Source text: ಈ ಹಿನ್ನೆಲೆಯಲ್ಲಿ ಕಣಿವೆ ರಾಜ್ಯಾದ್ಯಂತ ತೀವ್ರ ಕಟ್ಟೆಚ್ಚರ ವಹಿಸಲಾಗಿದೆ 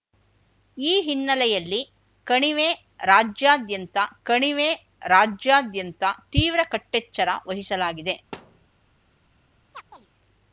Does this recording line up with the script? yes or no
no